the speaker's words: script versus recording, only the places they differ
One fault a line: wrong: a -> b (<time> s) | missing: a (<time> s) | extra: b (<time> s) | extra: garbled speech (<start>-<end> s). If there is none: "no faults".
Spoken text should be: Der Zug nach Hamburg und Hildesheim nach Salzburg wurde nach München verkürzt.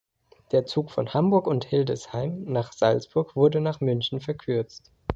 wrong: nach -> von (0.9 s)